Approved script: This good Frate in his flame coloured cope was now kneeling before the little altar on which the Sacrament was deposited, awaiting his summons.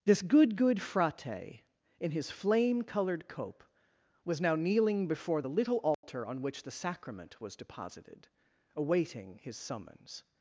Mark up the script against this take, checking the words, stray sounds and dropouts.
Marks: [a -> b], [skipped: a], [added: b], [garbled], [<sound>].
This good [added: good] Frate in his flame coloured cope was now kneeling before the little altar [dropout] on which the Sacrament was deposited, awaiting his summons.